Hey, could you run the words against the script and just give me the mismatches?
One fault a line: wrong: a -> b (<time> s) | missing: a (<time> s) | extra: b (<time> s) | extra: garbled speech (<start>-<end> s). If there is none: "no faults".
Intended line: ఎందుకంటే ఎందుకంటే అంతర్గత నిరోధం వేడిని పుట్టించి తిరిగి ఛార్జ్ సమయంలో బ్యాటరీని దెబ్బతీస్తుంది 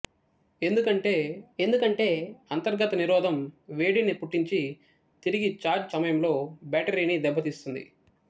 no faults